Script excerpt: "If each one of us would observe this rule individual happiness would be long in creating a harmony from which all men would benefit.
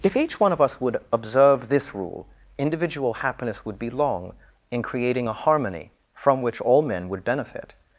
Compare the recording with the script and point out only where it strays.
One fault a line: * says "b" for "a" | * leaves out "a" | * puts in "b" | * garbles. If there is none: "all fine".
all fine